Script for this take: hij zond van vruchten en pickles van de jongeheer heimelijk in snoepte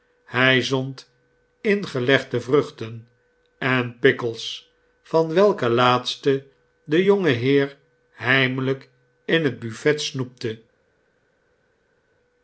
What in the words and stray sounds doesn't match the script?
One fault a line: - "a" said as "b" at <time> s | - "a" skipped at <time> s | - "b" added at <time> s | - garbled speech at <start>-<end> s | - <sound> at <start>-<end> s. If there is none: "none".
- "van" said as "ingelegde" at 1.6 s
- "welke laatste" added at 5.3 s
- "het buffet" added at 9.4 s